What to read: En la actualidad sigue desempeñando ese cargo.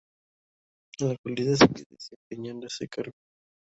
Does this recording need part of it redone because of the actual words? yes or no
no